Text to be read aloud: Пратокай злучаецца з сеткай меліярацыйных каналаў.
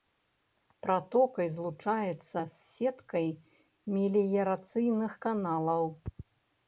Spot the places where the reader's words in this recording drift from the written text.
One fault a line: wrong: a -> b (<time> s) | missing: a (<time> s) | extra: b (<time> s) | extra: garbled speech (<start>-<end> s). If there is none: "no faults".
no faults